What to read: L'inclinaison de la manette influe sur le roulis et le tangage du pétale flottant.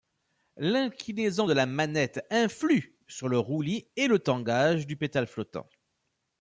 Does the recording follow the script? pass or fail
pass